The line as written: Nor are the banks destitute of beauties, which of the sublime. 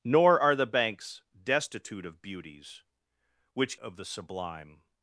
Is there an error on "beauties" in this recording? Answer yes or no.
no